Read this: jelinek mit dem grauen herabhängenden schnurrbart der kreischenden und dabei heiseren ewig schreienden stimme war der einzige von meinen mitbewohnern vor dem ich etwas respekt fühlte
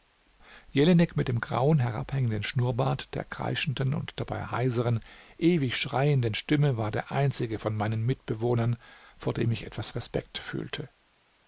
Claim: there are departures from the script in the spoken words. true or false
false